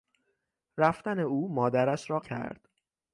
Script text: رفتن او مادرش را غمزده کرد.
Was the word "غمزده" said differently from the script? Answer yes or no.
yes